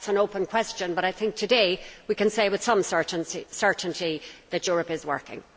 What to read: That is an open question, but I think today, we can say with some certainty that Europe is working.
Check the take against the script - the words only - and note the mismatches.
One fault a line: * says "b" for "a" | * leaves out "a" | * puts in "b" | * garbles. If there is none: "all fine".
all fine